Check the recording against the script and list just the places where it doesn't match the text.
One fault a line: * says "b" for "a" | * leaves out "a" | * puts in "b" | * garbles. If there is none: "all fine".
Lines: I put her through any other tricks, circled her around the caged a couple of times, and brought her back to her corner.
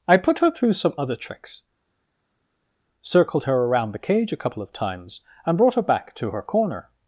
* says "some" for "any"
* says "cage" for "caged"